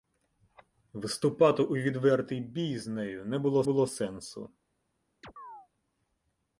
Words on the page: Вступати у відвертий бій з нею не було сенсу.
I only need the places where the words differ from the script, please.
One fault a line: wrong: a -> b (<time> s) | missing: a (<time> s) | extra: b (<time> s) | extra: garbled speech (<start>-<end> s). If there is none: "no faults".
extra: було (3.6 s)